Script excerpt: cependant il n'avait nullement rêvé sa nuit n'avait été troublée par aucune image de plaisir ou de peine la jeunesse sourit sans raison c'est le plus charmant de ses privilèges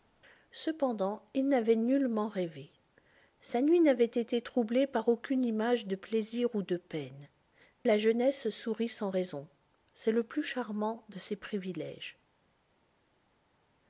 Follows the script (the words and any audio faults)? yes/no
yes